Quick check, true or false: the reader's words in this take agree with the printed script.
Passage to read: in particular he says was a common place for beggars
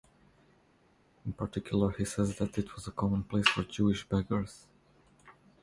false